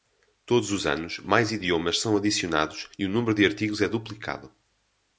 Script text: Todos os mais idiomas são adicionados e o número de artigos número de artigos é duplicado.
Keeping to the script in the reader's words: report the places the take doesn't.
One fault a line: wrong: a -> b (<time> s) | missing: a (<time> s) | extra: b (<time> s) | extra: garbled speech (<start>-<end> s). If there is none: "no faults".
extra: anos (0.9 s)
missing: número de artigos (3.8 s)